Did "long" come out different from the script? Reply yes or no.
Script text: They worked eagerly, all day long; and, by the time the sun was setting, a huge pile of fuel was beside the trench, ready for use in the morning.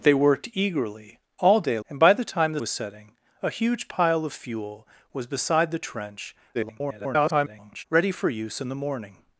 yes